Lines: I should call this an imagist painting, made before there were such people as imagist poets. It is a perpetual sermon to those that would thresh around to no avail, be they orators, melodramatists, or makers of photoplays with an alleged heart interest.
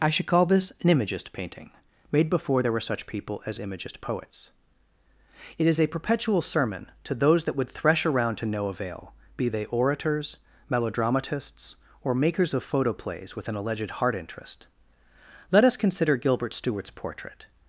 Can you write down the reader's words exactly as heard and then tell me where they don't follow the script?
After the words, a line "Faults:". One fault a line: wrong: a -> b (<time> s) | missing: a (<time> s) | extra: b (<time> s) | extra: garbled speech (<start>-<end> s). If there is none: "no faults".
I should call this an imagist painting, made before there were such people as imagist poets. It is a perpetual sermon to those that would thresh around to no avail, be they orators, melodramatists, or makers of photoplays with an alleged heart interest. Let us consider Gilbert Stuart's portrait
Faults:
extra: Let us consider Gilbert Stuart's portrait (15.5 s)